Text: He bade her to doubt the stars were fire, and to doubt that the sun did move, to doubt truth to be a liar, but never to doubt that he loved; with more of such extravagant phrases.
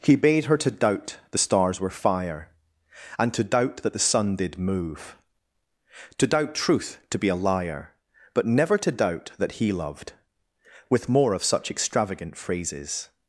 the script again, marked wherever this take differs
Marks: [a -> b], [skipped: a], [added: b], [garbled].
He bade her to doubt the stars were fire, and to doubt that the sun did move, to doubt truth to be a liar, but never to doubt that he loved; with more of such extravagant phrases.